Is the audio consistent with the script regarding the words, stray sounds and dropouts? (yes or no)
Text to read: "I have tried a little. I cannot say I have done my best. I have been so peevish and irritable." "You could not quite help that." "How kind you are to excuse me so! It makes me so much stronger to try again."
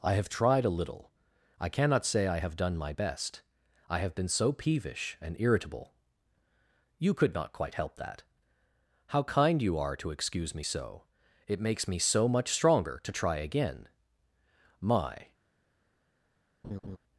no